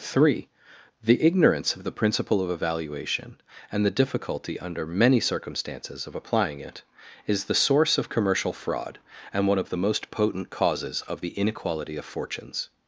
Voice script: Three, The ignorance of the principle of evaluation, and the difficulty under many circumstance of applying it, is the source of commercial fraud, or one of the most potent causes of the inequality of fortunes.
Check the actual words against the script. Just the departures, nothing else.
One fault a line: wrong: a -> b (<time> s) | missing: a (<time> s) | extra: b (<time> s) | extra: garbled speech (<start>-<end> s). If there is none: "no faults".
wrong: circumstance -> circumstances (5.2 s)
wrong: or -> and (9.3 s)